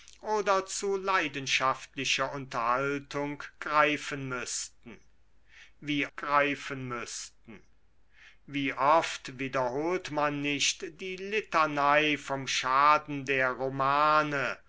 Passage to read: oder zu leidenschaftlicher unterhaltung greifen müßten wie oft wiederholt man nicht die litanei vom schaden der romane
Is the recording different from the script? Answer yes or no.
yes